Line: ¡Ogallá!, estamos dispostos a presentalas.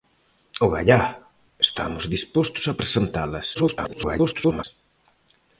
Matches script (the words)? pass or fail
fail